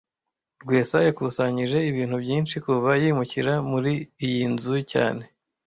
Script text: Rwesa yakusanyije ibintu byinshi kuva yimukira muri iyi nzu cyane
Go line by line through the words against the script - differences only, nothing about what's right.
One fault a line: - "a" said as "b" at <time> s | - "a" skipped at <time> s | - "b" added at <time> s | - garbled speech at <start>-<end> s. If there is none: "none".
none